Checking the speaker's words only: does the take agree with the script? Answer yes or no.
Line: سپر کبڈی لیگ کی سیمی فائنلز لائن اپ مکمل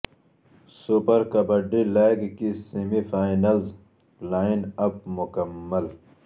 yes